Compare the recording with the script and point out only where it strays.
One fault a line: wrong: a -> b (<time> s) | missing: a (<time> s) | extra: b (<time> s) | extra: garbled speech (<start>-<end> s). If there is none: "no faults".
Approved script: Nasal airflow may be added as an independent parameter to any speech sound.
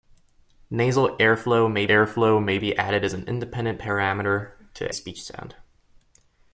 extra: airflow may (1.9 s)
missing: any (4.9 s)